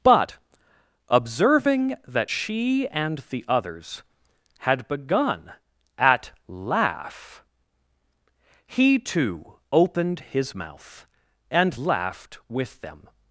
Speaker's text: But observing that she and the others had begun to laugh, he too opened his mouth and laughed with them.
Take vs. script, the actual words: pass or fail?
fail